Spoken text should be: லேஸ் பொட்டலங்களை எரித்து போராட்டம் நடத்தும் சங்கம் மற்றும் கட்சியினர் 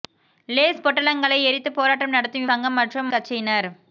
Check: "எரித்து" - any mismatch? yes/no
no